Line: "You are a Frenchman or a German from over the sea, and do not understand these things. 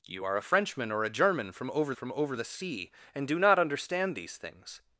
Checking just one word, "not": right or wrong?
right